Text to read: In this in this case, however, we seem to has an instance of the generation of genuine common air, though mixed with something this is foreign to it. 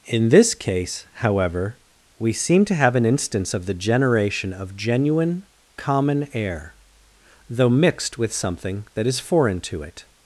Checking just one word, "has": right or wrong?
wrong